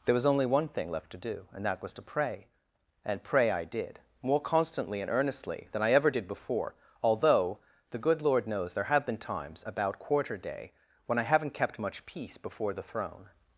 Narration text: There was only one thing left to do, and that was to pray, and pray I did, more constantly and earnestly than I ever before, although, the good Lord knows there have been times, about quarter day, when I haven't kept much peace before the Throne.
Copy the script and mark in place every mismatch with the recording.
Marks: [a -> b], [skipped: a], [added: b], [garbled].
There was only one thing left to do, and that was to pray, and pray I did, more constantly and earnestly than I ever [added: did] before, although, the good Lord knows there have been times, about quarter day, when I haven't kept much peace before the Throne.